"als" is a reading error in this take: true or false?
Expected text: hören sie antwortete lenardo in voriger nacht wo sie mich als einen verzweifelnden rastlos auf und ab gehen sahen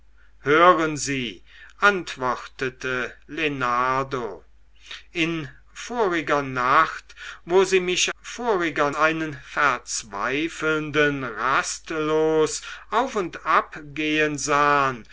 true